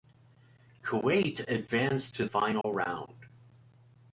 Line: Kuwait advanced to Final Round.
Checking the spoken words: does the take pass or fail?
pass